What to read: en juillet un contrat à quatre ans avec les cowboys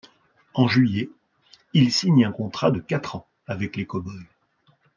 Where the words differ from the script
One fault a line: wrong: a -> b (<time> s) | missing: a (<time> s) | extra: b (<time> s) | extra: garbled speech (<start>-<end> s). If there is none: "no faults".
extra: il signe (1.7 s)
wrong: à -> de (2.7 s)